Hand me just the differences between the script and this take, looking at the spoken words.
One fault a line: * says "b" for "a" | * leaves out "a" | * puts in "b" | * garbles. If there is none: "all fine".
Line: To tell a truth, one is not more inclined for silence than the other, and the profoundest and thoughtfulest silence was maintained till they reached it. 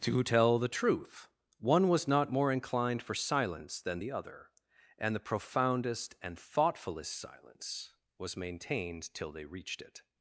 * says "the" for "a"
* says "was" for "is"